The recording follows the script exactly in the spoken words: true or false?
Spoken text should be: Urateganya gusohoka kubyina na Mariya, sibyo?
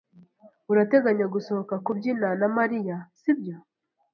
true